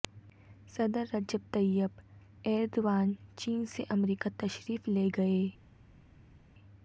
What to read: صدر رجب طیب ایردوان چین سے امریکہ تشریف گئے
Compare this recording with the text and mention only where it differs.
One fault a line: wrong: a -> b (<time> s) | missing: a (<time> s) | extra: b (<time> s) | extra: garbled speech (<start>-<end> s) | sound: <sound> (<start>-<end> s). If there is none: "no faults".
extra: لے (4.9 s)